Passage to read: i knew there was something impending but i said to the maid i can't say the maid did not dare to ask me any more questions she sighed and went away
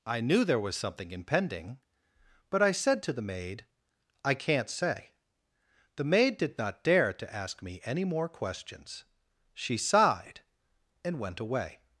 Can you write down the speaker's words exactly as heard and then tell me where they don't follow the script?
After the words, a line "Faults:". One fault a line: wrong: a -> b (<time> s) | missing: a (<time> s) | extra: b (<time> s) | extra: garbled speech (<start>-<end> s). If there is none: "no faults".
i knew there was something impending but i said to the maid i can't say the maid did not dare to ask me any more questions she sighed and went away
Faults:
no faults